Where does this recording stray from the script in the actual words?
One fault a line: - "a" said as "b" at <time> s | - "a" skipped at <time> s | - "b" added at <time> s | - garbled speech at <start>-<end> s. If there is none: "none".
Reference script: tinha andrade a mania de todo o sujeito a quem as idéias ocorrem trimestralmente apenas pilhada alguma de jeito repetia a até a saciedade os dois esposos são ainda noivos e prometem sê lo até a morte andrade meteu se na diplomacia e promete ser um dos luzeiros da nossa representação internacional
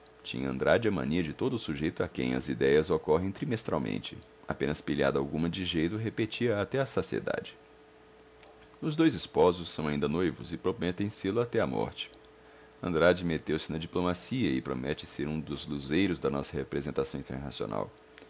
none